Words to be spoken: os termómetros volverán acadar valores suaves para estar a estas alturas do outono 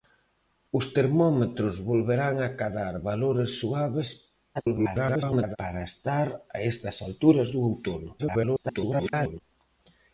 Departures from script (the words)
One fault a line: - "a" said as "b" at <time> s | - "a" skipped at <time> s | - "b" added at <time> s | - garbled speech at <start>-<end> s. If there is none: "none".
- garbled speech at 4.5-5.6 s
- garbled speech at 8.2-9.4 s